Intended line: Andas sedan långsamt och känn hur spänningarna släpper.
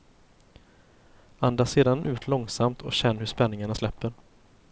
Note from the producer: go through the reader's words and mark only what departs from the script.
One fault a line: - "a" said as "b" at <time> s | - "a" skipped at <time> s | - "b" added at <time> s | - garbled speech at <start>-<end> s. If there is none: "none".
- "ut" added at 2.0 s